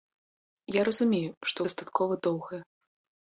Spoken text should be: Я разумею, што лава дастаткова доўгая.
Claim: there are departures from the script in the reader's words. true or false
true